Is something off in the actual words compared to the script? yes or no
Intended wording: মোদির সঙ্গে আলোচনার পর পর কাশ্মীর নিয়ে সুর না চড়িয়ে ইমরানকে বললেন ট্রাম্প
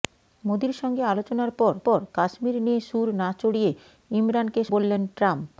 no